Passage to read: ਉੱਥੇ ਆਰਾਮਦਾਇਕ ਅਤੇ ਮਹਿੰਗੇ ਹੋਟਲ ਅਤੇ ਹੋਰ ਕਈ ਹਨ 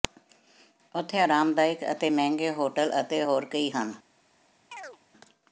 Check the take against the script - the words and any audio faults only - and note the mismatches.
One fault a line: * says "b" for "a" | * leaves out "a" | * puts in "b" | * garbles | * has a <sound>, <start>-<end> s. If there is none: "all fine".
* has a chirp, 4.7-5.0 s